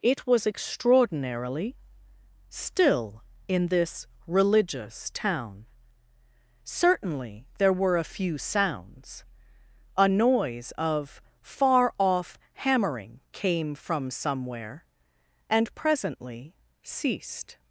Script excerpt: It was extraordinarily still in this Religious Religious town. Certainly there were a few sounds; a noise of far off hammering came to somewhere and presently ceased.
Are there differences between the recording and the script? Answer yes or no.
yes